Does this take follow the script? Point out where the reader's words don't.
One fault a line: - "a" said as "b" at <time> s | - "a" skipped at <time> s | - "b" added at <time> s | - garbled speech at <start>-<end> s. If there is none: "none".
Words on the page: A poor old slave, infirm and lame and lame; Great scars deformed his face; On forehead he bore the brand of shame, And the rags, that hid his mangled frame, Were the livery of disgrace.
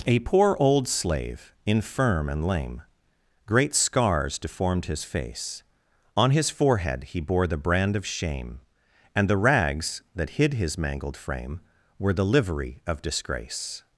- "and lame" skipped at 2.8 s
- "his" added at 6.3 s